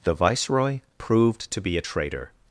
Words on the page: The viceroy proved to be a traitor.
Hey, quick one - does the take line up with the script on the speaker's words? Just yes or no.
yes